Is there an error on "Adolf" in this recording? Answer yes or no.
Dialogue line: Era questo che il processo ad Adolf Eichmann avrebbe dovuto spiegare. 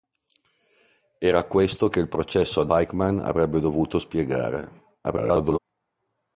yes